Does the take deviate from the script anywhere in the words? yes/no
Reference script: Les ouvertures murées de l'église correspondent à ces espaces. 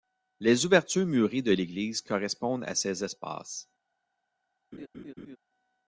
no